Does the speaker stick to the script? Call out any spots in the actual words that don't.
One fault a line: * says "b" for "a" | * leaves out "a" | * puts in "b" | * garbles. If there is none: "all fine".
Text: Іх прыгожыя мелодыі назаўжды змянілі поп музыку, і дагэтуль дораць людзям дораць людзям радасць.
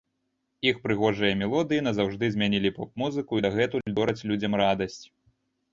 * leaves out "дораць людзям"